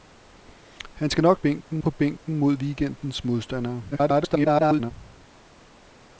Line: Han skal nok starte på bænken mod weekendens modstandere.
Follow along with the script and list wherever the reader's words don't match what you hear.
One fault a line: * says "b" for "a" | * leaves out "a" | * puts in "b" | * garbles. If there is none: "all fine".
* says "bænken" for "starte"
* garbles